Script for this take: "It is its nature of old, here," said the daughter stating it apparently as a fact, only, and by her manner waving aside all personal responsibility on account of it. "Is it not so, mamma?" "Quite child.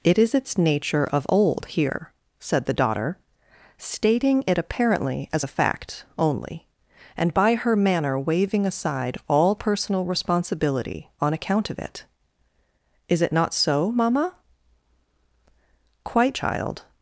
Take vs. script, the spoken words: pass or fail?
pass